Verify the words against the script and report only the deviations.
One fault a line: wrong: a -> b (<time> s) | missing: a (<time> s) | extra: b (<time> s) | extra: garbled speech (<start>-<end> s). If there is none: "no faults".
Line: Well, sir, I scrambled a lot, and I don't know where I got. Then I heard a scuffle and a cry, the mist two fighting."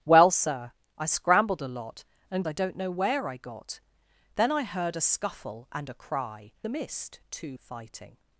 no faults